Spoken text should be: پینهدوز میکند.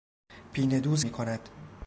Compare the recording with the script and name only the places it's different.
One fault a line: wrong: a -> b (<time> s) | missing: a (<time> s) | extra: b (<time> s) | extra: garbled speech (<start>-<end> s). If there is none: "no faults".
no faults